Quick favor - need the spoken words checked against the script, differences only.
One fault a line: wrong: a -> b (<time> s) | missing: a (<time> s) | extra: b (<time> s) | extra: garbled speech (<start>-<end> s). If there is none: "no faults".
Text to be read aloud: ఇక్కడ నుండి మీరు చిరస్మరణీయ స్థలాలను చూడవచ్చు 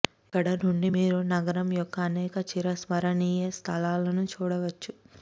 extra: నగరం యొక్క అనేక (1.3 s)